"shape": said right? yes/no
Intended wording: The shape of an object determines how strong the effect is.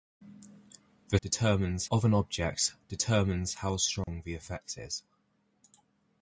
no